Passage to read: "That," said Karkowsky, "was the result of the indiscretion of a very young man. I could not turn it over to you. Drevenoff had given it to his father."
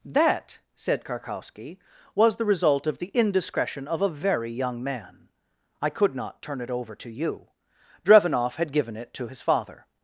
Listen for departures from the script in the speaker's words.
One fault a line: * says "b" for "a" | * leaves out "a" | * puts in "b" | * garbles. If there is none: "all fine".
all fine